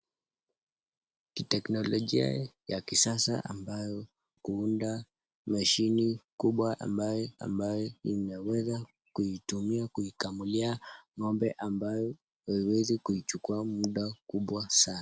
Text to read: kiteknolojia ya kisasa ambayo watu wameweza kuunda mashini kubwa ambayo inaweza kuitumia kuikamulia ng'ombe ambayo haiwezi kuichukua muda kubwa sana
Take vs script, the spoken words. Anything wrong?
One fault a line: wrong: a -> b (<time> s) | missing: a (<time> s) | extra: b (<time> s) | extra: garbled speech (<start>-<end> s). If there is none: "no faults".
missing: watu wameweza (4.0 s)
extra: ambayo (7.4 s)